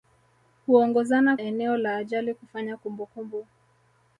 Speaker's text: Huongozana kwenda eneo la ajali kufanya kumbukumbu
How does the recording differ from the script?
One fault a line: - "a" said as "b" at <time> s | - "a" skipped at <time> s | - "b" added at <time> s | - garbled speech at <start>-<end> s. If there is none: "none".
- "kwenda" skipped at 1.4 s